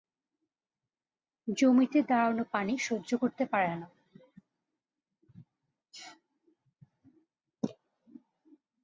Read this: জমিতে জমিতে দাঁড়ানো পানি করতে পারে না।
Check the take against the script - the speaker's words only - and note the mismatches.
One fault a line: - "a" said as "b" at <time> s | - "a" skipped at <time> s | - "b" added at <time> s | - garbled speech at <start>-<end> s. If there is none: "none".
- "জমিতে" skipped at 2.0 s
- "সহ্য" added at 2.9 s